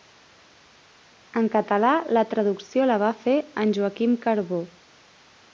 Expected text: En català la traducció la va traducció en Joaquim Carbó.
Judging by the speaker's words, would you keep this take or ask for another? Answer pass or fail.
fail